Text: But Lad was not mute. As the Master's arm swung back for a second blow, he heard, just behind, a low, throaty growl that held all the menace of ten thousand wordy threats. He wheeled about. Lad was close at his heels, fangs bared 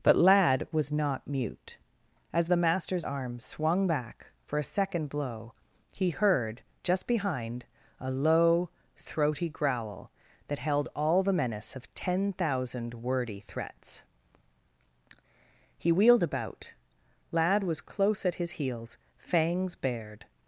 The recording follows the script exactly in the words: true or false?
true